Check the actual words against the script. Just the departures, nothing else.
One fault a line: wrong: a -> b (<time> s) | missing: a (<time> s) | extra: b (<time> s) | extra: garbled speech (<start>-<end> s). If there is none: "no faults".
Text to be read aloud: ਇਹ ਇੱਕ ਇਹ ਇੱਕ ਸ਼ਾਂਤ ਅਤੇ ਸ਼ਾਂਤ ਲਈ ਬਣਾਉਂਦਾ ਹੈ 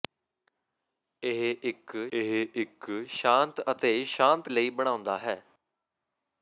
no faults